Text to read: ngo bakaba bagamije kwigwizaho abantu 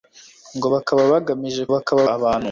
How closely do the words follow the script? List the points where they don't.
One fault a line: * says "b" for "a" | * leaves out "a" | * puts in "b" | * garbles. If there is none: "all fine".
* says "bakaba" for "kwigwizaho"